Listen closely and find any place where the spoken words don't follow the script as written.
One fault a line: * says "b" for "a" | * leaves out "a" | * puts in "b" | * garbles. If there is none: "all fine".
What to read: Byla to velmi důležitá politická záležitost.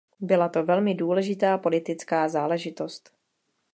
all fine